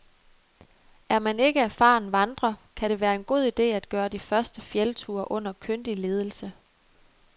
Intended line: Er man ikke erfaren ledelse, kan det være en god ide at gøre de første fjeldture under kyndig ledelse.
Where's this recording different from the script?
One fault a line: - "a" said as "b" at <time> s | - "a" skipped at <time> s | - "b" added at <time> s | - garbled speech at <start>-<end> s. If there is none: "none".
- "ledelse" said as "vandrer" at 2.1 s